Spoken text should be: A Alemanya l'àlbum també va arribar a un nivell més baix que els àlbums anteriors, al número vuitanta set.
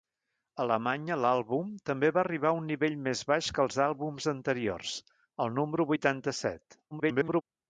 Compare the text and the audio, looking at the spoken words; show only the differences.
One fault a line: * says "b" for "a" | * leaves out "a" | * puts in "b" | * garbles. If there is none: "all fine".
* garbles